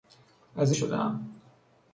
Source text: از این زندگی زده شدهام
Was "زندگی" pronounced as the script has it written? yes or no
no